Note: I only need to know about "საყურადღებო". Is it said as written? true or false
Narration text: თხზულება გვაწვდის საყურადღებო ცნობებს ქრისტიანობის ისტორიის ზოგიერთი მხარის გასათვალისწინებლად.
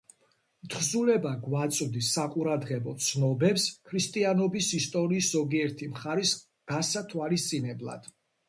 true